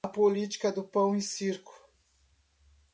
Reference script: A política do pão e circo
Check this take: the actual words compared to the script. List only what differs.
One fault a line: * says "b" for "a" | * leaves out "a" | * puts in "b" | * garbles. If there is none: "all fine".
all fine